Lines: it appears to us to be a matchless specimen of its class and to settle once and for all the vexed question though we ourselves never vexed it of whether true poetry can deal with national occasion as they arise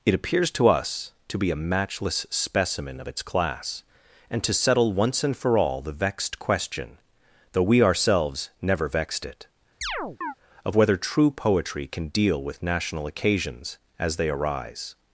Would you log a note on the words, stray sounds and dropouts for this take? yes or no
yes